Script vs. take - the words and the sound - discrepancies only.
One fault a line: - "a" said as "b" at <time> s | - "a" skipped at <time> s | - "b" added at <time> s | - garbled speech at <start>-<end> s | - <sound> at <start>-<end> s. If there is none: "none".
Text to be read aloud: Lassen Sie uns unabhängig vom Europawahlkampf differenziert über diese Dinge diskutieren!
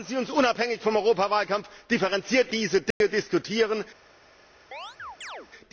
- "über" skipped at 2.5 s
- dropout at 2.9-3.0 s
- chirp at 4.7-5.5 s